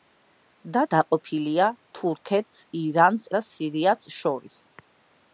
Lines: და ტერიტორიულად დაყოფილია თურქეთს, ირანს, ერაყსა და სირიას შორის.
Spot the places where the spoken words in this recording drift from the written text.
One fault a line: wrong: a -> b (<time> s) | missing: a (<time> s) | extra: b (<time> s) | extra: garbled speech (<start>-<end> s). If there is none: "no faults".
missing: ტერიტორიულად (0.8 s)
missing: ერაყსა (3.3 s)